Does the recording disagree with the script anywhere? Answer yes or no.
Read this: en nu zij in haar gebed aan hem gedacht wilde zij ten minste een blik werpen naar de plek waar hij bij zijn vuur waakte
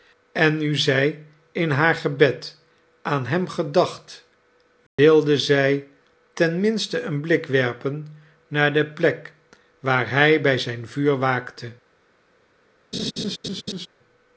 no